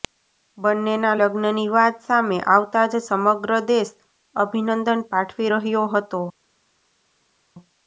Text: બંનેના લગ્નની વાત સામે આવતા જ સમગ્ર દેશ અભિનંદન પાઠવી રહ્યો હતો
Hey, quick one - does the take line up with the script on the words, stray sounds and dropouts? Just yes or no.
yes